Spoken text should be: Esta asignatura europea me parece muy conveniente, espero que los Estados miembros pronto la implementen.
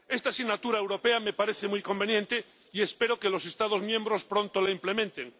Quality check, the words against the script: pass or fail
fail